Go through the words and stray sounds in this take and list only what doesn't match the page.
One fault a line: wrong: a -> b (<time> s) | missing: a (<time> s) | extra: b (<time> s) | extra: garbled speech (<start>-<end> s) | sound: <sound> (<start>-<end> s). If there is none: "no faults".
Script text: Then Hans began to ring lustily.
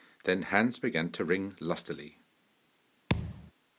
sound: thud (3.1-3.5 s)